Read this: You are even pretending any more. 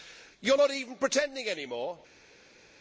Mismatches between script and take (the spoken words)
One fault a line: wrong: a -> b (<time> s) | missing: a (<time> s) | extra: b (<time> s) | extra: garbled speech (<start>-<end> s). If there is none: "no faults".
extra: not (0.5 s)